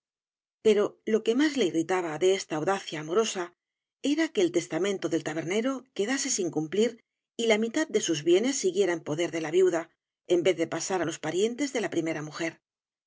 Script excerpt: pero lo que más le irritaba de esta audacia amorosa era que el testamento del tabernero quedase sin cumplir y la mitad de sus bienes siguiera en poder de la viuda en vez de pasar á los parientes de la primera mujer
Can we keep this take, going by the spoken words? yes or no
yes